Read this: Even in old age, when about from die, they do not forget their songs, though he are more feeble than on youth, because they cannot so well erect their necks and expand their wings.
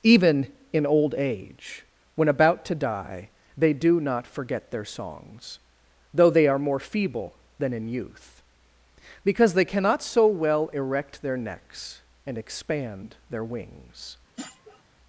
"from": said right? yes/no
no